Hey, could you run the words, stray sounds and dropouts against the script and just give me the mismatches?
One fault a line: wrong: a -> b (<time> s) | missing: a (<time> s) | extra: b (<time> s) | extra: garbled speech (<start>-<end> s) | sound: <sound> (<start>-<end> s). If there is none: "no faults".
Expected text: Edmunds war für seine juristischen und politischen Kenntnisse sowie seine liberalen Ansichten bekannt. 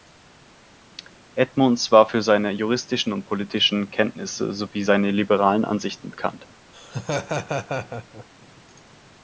sound: laugh (6.7-8.3 s)